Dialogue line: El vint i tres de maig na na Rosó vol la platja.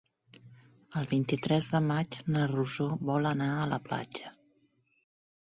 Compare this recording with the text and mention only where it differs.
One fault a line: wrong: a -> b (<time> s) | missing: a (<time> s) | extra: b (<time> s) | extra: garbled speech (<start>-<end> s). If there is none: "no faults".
missing: na (2.5 s)
extra: anar a (3.4 s)